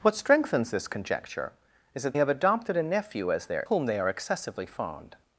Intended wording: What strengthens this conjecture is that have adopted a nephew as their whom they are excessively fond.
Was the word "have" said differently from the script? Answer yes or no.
no